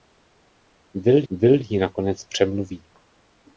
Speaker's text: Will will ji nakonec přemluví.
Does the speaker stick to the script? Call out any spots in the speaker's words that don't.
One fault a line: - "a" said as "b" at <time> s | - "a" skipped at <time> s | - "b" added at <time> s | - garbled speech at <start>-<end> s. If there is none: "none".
none